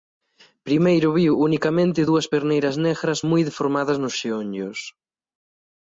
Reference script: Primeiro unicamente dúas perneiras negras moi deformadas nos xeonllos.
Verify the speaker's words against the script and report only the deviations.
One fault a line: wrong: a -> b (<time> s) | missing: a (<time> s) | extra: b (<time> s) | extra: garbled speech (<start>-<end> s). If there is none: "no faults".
extra: viu (1.2 s)